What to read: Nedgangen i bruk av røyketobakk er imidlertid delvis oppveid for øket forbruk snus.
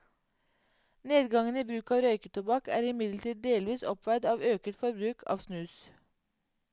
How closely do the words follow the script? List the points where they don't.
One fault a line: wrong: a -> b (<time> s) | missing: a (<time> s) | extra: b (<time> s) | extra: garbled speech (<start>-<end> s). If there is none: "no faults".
wrong: for -> av (4.3 s)
extra: av (5.3 s)